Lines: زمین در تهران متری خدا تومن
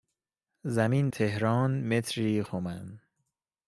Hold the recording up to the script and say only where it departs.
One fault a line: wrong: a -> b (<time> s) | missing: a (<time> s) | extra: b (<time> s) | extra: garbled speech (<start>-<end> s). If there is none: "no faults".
missing: در (1.1 s)
missing: خدا (2.4 s)